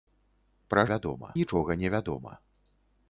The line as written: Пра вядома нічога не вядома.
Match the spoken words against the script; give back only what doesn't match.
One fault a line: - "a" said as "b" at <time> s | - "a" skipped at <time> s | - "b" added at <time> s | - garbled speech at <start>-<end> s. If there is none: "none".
none